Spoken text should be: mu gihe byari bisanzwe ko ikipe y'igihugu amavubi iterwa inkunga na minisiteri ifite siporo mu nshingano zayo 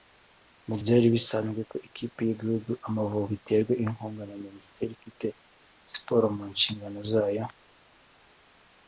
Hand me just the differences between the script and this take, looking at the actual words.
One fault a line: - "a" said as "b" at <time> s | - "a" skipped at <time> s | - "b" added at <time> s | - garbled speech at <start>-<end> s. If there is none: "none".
- "gihe" skipped at 0.8 s